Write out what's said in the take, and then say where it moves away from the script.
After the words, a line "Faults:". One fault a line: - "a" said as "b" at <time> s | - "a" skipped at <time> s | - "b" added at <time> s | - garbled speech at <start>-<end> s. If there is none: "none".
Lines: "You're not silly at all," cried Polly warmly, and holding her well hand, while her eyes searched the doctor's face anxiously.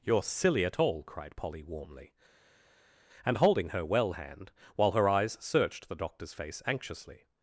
"You're silly at all," cried Polly warmly, and holding her well hand, while her eyes searched the doctor's face anxiously.
Faults:
- "not" skipped at 0.2 s